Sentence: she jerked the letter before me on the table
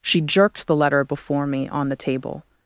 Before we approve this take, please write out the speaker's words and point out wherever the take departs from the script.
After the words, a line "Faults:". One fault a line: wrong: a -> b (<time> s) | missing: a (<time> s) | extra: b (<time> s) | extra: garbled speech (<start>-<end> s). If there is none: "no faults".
she jerked the letter before me on the table
Faults:
no faults